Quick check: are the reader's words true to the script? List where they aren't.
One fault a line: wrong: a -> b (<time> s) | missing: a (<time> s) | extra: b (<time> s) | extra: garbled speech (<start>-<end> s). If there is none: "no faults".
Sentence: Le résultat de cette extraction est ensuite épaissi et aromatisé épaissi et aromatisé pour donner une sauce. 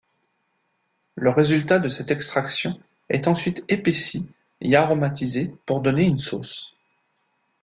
missing: épaissi et aromatisé (5.5 s)